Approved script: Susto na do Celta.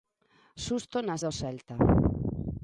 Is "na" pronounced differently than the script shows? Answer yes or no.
no